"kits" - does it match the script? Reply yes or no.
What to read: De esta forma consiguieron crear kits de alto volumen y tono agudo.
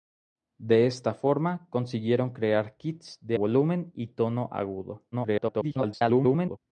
yes